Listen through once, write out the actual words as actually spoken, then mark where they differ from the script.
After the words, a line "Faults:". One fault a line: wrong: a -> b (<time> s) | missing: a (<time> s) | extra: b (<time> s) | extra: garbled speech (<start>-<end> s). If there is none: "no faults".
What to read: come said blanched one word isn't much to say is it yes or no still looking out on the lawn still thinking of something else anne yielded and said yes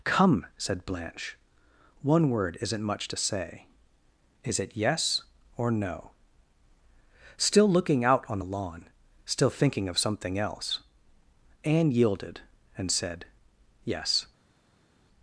come said blanche one word isn't much to say is it yes or no still looking out on the lawn still thinking of something else anne yielded and said yes
Faults:
wrong: blanched -> blanche (0.8 s)